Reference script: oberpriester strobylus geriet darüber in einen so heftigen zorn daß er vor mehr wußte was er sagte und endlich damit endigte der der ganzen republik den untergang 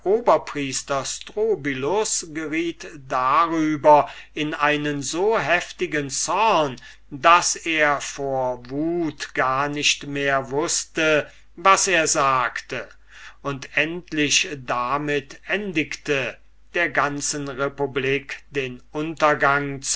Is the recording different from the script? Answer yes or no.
yes